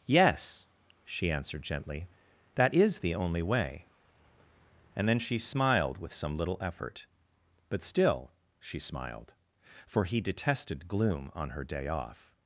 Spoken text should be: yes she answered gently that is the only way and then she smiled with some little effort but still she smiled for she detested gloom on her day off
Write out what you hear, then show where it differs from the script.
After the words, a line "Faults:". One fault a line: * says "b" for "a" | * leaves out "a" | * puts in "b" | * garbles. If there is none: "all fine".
yes she answered gently that is the only way and then she smiled with some little effort but still she smiled for he detested gloom on her day off
Faults:
* says "he" for "she"